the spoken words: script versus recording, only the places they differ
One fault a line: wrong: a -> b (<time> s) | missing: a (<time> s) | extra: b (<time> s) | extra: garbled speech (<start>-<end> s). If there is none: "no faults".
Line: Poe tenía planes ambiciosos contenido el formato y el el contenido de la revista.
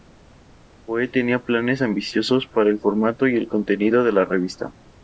wrong: contenido -> para (2.5 s)
missing: el (3.5 s)